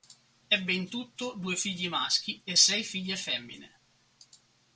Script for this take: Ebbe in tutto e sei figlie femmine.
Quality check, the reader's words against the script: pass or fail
fail